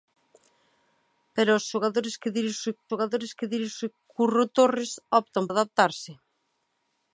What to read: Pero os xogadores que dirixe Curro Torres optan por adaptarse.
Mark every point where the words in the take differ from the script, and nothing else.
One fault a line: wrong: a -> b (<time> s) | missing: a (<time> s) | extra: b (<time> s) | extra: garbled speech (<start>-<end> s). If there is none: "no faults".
extra: xogadores que dirixe (2.9 s)
missing: por (5.4 s)